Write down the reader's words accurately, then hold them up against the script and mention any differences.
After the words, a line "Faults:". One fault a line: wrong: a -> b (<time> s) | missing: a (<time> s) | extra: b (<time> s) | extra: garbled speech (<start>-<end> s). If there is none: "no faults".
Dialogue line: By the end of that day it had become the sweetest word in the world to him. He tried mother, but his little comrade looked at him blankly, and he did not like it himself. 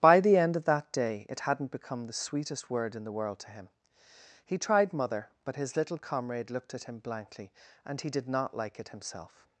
By the end of that day it hadn't become the sweetest word in the world to him. He tried mother, but his little comrade looked at him blankly, and he did not like it himself.
Faults:
wrong: had -> hadn't (1.4 s)